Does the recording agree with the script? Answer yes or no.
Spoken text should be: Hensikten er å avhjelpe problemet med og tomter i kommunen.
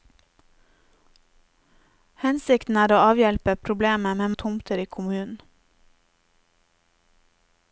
yes